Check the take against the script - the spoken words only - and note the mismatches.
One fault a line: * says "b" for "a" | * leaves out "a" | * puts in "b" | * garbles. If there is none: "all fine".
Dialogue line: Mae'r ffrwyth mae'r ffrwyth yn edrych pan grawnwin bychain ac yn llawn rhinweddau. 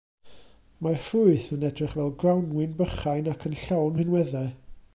* leaves out "mae'r ffrwyth"
* says "fel" for "pan"